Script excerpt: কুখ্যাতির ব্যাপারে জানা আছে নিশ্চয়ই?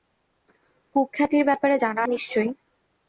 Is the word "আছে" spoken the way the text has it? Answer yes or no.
no